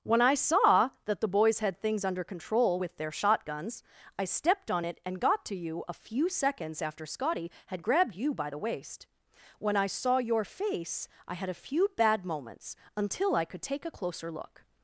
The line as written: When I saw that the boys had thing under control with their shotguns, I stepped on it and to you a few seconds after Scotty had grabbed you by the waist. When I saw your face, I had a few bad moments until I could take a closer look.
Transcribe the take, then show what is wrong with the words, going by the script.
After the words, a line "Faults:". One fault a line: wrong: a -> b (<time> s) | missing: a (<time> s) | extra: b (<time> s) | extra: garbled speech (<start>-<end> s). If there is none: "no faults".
When I saw that the boys had things under control with their shotguns, I stepped on it and got to you a few seconds after Scotty had grabbed you by the waist. When I saw your face, I had a few bad moments until I could take a closer look.
Faults:
wrong: thing -> things (1.8 s)
extra: got (5.2 s)